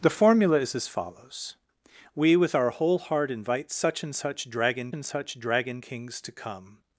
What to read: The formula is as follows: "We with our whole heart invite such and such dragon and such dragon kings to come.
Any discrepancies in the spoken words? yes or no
no